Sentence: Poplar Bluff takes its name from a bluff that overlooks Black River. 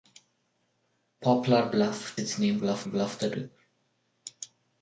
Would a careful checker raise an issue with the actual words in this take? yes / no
yes